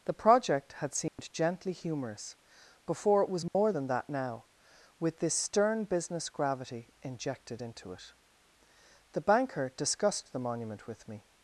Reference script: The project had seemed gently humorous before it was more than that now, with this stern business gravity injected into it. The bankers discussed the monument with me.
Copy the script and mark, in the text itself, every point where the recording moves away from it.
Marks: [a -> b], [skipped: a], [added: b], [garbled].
The project had seemed gently humorous before it was more than that now, with this stern business gravity injected into it. The [bankers -> banker] discussed the monument with me.